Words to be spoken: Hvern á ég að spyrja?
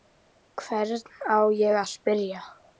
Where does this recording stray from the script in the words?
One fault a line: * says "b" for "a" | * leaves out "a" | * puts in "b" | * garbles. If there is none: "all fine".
all fine